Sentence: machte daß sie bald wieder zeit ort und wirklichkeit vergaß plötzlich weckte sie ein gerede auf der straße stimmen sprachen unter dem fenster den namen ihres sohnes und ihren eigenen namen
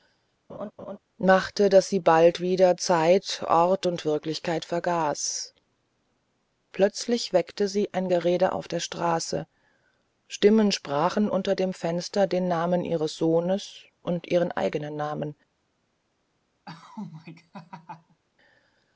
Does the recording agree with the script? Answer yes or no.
yes